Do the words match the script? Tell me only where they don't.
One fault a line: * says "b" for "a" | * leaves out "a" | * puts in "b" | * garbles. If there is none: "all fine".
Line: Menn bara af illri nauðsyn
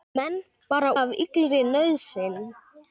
all fine